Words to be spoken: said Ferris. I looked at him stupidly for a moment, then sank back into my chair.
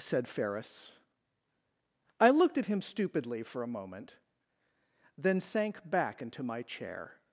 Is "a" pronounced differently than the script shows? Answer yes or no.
no